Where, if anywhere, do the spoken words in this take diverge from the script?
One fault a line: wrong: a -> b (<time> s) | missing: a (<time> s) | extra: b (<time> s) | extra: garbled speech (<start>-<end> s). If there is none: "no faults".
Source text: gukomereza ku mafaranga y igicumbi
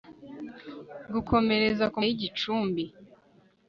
missing: mafaranga (2.0 s)